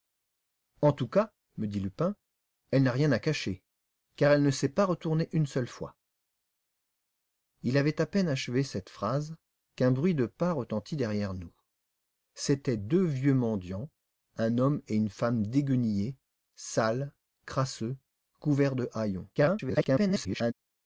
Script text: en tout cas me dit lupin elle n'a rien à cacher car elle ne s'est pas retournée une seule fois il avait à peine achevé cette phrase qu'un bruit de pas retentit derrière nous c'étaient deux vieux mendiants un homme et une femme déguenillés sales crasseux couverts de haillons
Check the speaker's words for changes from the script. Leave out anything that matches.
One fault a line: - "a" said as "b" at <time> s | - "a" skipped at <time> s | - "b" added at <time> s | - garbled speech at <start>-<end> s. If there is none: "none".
- garbled speech at 19.3-20.5 s